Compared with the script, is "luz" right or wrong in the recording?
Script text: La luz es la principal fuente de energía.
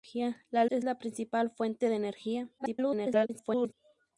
wrong